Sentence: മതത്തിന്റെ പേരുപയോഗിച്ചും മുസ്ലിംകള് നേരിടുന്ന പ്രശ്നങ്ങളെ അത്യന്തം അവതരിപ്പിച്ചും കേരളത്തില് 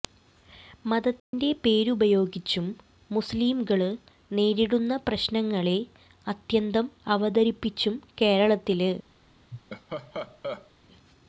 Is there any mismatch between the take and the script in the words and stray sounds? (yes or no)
yes